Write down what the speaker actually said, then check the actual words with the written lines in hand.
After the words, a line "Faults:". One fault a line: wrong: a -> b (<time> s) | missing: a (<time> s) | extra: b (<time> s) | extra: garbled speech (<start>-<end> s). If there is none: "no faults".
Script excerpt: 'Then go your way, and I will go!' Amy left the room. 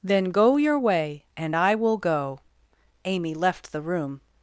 'Then go your way, and I will go!' Amy left the room.
Faults:
no faults